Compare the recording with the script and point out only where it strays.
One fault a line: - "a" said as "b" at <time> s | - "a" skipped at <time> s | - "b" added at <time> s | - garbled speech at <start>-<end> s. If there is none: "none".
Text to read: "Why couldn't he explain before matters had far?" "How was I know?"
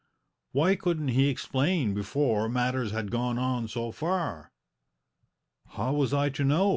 - "gone on so" added at 3.1 s
- "to" added at 6.3 s